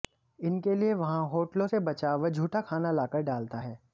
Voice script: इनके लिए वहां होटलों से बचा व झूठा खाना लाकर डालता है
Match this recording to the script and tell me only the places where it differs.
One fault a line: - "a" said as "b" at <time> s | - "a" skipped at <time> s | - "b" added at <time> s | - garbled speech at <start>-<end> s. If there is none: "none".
none